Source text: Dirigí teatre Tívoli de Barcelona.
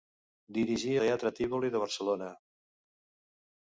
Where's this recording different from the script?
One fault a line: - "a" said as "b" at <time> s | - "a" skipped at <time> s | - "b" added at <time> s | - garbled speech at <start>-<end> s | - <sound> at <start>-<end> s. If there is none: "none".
none